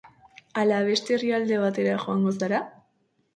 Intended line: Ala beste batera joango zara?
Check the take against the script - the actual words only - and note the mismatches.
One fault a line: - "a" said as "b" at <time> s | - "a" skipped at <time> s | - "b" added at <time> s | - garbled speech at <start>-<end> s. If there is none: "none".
- "herrialde" added at 1.1 s